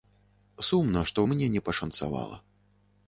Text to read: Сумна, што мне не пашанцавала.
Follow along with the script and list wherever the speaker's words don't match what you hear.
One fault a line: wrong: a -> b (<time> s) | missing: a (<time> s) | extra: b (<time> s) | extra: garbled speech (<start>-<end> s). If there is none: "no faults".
no faults